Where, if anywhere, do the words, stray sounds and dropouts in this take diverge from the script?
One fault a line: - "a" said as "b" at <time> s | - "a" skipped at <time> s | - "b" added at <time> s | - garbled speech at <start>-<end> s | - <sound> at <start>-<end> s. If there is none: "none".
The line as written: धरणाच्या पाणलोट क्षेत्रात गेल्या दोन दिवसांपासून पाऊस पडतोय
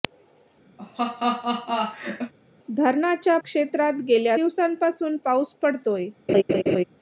- laugh at 0.8-2.3 s
- "पाणलोट" skipped at 3.4 s
- "दोन" skipped at 4.4 s
- laugh at 6.3-6.8 s